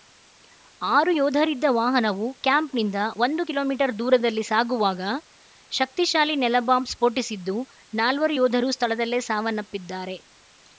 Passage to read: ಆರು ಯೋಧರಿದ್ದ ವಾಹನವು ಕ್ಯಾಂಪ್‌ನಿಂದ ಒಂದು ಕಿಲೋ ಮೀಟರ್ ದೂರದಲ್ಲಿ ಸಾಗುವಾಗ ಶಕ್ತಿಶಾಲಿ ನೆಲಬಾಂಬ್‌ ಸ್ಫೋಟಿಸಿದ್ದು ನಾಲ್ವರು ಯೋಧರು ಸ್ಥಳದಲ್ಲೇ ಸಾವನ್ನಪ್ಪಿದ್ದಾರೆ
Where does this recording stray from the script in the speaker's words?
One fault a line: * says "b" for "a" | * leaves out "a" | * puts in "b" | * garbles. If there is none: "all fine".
all fine